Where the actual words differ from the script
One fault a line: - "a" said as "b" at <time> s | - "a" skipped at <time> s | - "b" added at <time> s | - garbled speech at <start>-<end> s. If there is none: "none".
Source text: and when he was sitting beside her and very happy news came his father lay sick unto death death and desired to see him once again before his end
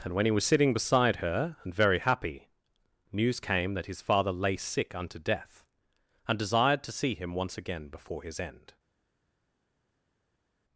- "that" added at 3.8 s
- "death" skipped at 5.7 s